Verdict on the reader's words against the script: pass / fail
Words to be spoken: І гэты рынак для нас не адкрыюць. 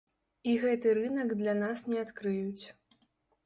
pass